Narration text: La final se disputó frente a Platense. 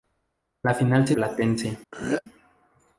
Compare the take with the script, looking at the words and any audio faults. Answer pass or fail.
fail